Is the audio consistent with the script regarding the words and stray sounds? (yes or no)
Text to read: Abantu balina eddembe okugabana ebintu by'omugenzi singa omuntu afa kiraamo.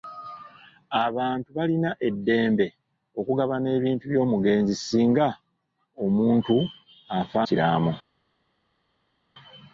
yes